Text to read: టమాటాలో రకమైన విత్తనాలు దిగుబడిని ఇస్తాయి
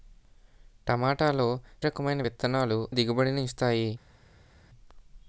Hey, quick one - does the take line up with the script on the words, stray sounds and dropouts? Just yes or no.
yes